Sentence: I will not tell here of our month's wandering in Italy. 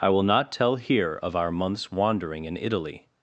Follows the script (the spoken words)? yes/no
yes